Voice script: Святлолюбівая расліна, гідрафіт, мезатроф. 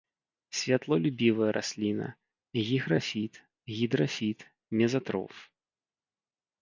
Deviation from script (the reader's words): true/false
true